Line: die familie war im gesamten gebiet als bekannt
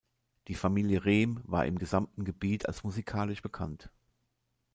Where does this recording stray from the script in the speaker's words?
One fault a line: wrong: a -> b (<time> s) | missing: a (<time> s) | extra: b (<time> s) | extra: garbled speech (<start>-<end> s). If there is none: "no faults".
extra: rehm (1.1 s)
extra: musikalisch (2.8 s)